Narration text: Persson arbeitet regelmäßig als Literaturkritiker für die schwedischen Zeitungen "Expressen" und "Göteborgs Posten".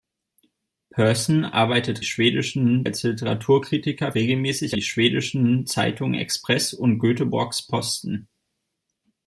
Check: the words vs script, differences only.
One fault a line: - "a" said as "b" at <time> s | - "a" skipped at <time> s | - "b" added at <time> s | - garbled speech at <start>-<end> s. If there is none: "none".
- "regelmäßig" said as "schwedischen" at 2.0 s
- "für" said as "regelmäßig" at 4.1 s